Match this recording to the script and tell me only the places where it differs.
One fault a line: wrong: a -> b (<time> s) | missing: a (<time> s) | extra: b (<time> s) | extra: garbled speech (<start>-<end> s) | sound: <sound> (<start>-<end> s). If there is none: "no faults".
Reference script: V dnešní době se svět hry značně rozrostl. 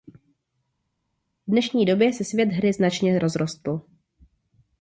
no faults